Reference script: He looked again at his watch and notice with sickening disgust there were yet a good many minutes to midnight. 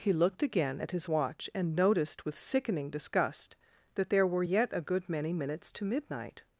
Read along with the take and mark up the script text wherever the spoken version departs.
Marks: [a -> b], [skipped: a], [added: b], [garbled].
He looked again at his watch and [notice -> noticed] with sickening disgust [added: that] there were yet a good many minutes to midnight.